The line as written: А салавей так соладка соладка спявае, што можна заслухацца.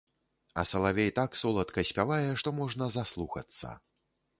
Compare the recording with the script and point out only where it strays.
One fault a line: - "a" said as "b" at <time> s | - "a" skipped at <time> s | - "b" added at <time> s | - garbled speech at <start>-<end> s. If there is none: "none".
- "соладка" skipped at 1.9 s